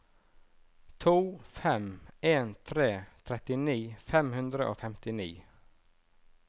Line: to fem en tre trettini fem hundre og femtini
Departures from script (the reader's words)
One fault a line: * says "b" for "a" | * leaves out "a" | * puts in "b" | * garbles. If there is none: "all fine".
all fine